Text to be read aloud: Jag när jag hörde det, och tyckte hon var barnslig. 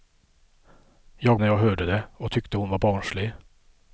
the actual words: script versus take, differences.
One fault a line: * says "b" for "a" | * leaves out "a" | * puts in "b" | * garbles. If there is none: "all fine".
all fine